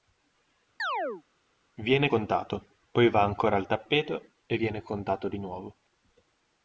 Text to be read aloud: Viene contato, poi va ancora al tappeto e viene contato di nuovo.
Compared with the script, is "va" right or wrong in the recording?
right